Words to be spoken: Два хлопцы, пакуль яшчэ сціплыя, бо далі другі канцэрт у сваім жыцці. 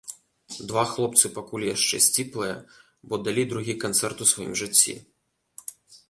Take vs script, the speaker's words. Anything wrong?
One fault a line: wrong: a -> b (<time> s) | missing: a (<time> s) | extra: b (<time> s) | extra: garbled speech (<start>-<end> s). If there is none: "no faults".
no faults